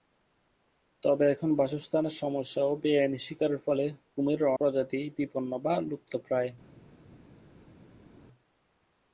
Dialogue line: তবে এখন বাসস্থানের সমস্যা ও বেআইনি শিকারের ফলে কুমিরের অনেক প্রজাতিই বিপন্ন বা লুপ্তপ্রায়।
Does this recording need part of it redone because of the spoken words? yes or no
yes